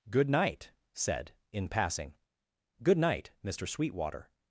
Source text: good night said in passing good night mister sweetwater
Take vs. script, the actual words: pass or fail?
pass